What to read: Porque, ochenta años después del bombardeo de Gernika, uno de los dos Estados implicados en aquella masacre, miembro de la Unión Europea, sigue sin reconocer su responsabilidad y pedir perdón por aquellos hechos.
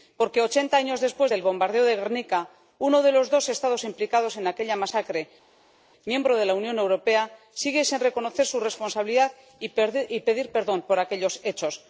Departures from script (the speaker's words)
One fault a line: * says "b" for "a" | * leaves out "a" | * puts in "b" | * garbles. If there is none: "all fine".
all fine